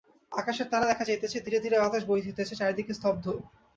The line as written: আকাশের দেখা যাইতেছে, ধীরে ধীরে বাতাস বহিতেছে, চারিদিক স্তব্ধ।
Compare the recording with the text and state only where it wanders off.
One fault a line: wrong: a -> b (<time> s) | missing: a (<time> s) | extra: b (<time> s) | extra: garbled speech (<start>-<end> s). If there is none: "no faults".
extra: তারা (0.7 s)